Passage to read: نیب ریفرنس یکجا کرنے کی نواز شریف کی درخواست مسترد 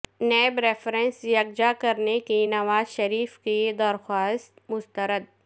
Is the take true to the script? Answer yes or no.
yes